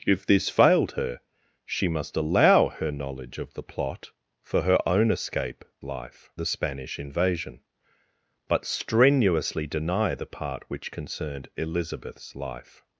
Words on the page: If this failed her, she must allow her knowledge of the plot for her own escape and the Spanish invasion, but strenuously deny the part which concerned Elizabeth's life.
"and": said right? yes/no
no